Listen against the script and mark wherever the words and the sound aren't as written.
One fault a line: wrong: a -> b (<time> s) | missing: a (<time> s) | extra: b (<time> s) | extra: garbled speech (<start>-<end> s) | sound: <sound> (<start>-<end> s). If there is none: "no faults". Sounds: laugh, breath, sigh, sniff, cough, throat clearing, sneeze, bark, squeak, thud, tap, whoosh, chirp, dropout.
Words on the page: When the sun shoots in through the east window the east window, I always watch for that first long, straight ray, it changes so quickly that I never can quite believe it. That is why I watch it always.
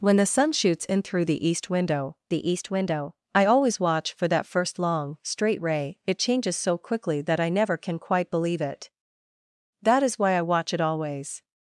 no faults